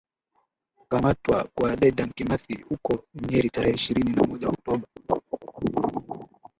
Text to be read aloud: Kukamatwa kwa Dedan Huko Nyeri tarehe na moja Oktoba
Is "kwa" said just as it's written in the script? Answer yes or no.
yes